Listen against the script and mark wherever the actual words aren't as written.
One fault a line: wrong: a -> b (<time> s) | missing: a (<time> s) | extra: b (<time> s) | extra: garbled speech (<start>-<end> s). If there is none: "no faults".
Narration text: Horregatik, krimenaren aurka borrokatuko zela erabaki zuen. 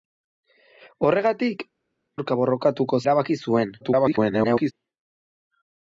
missing: krimenaren (1.6 s)
missing: zela (3.0 s)
extra: garbled speech (3.8-4.7 s)